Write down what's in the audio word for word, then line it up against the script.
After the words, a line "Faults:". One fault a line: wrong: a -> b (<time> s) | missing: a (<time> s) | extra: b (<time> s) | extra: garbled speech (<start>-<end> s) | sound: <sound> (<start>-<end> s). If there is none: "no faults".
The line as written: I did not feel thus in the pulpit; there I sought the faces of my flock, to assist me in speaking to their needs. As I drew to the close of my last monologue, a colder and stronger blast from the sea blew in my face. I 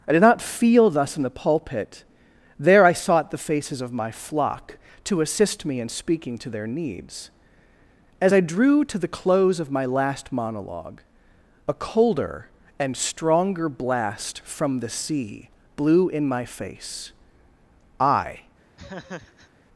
I did not feel thus in the pulpit; there I sought the faces of my flock, to assist me in speaking to their needs. As I drew to the close of my last monologue, a colder and stronger blast from the sea blew in my face. I
Faults:
sound: laugh (18.8-19.5 s)